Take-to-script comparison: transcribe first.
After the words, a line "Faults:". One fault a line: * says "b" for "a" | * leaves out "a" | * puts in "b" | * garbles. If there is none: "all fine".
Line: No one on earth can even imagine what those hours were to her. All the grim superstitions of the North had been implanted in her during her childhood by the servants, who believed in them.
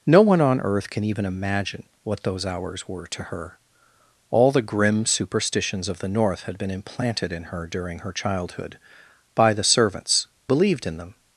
No one on earth can even imagine what those hours were to her. All the grim superstitions of the North had been implanted in her during her childhood by the servants, believed in them.
Faults:
* leaves out "who"